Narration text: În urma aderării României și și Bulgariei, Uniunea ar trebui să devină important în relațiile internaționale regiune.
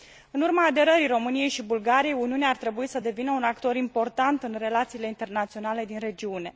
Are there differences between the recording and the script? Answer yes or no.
yes